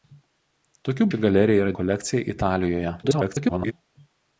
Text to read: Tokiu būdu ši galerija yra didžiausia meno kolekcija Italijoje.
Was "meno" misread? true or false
true